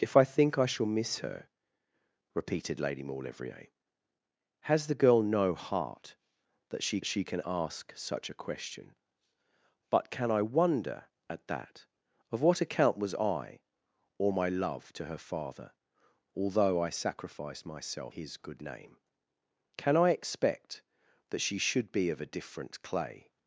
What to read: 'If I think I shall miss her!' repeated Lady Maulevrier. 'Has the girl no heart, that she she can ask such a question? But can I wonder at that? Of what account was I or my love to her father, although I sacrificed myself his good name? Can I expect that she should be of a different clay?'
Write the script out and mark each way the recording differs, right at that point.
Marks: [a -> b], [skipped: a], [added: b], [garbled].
'If I think I shall miss her!' repeated Lady Maulevrier. 'Has the girl no heart, that she she can ask such a question? But can I wonder at that? Of what account was I or my love to her father, although I sacrificed myself his good name? Can I expect that she should be of a different clay?'